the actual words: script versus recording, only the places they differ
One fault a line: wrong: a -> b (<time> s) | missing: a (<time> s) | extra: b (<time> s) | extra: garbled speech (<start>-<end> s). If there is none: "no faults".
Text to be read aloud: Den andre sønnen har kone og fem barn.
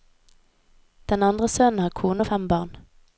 no faults